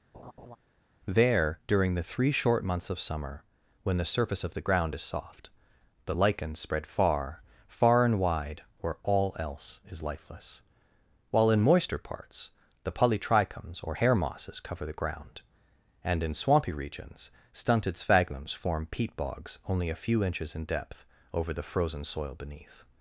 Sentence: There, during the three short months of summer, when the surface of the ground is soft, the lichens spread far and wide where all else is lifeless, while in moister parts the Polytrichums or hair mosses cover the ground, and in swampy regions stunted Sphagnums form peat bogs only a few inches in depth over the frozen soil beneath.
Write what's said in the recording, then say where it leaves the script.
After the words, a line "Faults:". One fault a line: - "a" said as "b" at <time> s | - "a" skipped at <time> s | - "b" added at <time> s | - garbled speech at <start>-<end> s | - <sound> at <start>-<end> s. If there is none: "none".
There, during the three short months of summer, when the surface of the ground is soft, the lichens spread far far and wide where all else is lifeless, while in moister parts the Polytrichums or hair mosses cover the ground, and in swampy regions stunted Sphagnums form peat bogs only a few inches in depth over the frozen soil beneath.
Faults:
- laugh at 0.1-0.6 s
- "far" added at 7.7 s